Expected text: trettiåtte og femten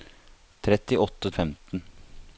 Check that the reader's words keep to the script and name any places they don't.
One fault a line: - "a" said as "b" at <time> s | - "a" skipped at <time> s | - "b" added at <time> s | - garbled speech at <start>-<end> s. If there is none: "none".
none